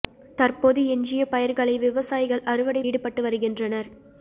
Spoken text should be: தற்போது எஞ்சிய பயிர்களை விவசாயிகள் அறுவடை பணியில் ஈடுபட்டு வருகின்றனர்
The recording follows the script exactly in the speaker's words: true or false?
false